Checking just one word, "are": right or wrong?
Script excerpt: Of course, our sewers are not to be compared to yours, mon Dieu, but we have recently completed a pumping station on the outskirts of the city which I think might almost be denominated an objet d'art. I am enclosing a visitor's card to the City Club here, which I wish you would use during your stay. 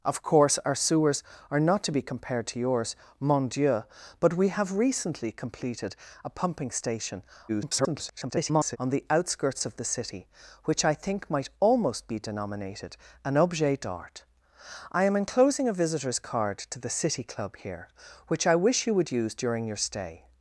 right